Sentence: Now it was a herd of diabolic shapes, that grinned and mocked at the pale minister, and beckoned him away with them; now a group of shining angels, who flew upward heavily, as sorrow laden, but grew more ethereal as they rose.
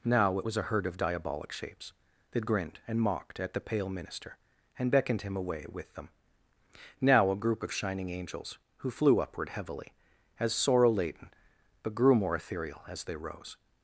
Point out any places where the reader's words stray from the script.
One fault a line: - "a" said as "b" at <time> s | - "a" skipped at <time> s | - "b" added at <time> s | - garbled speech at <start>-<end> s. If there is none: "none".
none